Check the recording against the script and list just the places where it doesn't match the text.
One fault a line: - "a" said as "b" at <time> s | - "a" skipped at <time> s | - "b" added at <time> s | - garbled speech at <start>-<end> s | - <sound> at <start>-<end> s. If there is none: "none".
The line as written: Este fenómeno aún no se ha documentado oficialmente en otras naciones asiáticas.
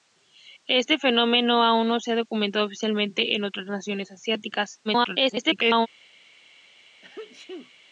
- garbled speech at 4.8-5.9 s
- sneeze at 7.0-7.7 s